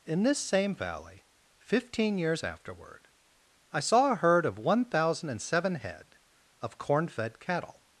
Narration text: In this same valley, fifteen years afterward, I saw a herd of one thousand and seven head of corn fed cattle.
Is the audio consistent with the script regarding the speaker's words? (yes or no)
yes